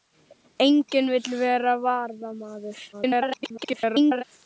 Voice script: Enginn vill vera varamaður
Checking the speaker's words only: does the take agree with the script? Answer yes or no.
no